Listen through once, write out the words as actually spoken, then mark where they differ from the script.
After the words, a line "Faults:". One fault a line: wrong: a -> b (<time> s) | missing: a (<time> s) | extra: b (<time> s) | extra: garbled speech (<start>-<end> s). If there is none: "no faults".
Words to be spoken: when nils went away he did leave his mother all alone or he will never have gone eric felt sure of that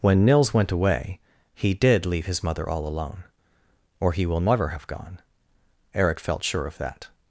when nils went away he did leave his mother all alone or he will never have gone eric felt sure of that
Faults:
no faults